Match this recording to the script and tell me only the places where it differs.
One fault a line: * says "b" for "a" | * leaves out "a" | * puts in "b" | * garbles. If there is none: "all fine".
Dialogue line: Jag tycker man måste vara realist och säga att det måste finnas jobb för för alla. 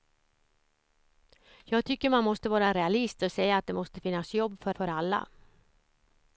all fine